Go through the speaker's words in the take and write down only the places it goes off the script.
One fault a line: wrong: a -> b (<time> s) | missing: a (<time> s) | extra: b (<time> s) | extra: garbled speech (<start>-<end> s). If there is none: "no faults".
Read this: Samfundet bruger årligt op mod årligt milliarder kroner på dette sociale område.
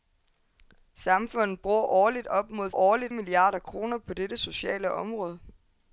no faults